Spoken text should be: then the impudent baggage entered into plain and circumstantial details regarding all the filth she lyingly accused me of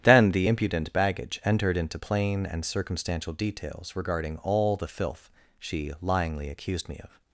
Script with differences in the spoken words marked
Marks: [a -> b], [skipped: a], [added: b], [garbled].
then the impudent baggage entered into plain and circumstantial details regarding all the filth she lyingly accused me of